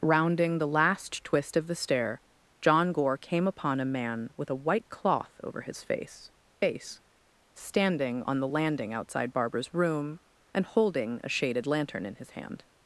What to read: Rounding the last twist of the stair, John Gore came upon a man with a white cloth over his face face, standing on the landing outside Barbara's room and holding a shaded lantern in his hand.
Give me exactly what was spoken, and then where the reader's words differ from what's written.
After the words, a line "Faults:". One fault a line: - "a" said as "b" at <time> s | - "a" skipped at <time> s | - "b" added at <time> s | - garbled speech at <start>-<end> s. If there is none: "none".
Rounding the last twist of the stair, John Gore came upon a man with a white cloth over his face face, standing on the landing outside Barbara's room and holding a shaded lantern in his hand.
Faults:
none